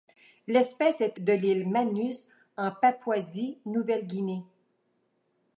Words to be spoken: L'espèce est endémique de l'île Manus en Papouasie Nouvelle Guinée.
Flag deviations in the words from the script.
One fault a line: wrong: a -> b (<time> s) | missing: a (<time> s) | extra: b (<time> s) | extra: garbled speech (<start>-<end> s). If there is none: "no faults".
missing: endémique (1.2 s)